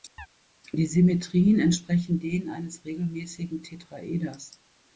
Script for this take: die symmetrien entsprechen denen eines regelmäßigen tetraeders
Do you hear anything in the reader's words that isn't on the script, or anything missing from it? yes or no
no